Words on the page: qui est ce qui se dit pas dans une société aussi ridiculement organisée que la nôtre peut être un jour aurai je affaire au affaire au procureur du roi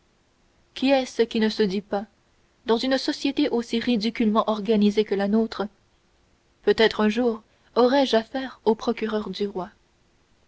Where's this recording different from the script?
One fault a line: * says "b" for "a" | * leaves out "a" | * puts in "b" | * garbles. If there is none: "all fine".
* puts in "ne"
* leaves out "affaire au"